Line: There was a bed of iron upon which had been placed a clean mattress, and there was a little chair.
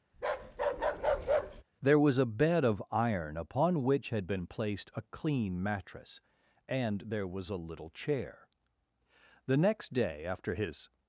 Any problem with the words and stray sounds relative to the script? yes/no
yes